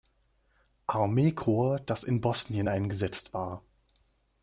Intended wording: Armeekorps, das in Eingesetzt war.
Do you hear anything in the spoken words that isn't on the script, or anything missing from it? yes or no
yes